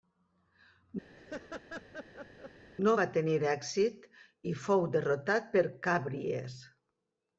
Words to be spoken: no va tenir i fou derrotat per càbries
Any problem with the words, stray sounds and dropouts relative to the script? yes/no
yes